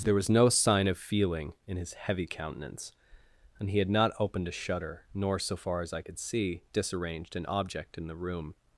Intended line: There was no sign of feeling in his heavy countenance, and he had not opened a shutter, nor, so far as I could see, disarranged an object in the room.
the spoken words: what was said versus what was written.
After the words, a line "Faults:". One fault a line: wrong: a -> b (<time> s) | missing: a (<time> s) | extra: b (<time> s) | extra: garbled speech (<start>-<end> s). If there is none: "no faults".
There was no sign of feeling in his heavy countenance, and he had not opened a shutter, nor, so far as I could see, disarranged an object in the room.
Faults:
no faults